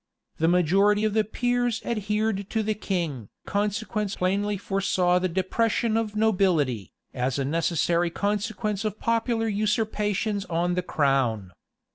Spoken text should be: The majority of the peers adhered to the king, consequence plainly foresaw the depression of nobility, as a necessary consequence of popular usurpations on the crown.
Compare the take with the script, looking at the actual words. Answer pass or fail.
pass